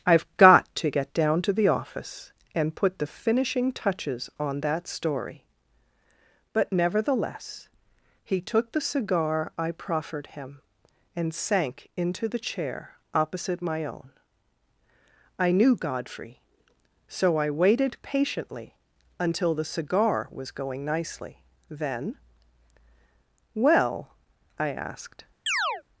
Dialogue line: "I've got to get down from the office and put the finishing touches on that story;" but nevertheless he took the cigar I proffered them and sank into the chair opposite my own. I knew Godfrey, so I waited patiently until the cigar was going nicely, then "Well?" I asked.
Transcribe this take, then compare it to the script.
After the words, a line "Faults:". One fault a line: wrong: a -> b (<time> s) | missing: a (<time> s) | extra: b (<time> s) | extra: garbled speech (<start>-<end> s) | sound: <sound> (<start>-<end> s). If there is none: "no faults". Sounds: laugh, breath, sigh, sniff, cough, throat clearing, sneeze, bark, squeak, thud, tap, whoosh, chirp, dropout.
"I've got to get down to the office and put the finishing touches on that story;" but nevertheless he took the cigar I proffered him and sank into the chair opposite my own. I knew Godfrey, so I waited patiently until the cigar was going nicely, then "Well?" I asked.
Faults:
wrong: from -> to (1.4 s)
wrong: them -> him (10.3 s)
sound: chirp (25.5-25.8 s)